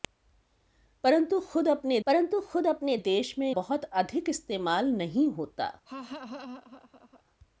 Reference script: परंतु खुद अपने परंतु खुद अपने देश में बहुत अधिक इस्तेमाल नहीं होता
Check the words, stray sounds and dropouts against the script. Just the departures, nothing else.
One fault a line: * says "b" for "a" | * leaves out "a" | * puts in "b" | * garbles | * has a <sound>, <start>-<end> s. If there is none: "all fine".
* has a laugh, 5.9-7.2 s